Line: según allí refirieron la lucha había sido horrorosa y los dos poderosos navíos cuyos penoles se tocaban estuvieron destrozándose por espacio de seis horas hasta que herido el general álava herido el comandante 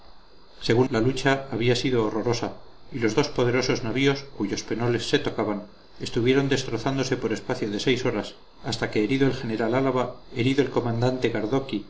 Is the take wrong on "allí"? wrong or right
wrong